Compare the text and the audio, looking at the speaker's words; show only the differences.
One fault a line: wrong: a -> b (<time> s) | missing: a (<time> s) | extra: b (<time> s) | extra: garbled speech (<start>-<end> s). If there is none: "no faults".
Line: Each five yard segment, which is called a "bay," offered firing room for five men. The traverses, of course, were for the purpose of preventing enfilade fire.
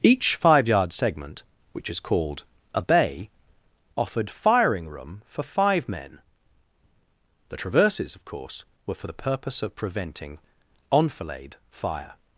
no faults